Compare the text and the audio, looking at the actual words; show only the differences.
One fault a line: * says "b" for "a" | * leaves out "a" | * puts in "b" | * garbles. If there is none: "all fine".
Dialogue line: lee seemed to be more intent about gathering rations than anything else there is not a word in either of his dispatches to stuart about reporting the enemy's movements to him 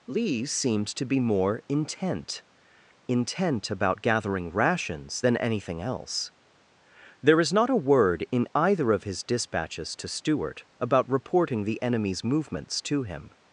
* puts in "intent"